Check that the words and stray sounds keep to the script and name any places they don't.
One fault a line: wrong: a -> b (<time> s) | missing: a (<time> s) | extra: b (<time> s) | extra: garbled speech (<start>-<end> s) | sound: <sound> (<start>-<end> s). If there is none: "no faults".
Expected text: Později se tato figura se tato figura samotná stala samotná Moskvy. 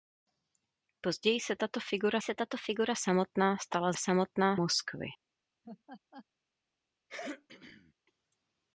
sound: laugh (5.6-6.3 s)
sound: throat clearing (7.1-7.9 s)